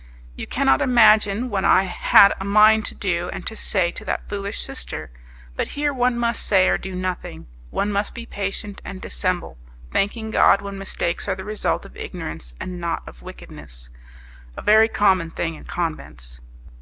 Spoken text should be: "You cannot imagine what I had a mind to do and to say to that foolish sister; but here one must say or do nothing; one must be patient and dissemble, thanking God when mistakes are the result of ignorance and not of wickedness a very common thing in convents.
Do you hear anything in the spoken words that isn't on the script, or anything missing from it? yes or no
no